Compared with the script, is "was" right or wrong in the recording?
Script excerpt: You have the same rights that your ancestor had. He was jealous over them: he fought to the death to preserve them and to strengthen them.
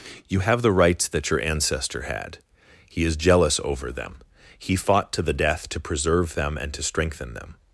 wrong